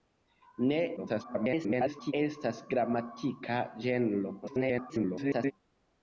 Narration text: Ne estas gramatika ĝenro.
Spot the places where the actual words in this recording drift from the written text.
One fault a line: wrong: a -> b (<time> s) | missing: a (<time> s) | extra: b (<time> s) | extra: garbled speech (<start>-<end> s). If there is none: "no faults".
extra: garbled speech (1.0-2.1 s)
extra: garbled speech (4.4-5.5 s)